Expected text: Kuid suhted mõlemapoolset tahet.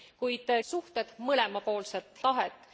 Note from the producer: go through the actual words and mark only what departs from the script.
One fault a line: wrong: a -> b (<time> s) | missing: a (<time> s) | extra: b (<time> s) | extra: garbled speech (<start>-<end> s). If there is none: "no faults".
no faults